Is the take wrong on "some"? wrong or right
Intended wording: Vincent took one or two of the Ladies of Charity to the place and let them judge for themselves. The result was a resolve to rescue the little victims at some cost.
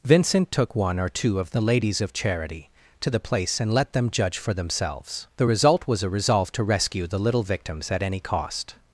wrong